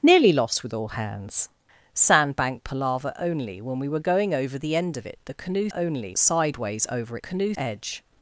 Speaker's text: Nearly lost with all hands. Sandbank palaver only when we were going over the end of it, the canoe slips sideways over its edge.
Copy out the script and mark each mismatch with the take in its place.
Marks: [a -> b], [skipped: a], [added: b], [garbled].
Nearly lost with all hands. Sandbank palaver only when we were going over the end of it, the canoe [slips -> only] sideways over [its -> canoe] edge.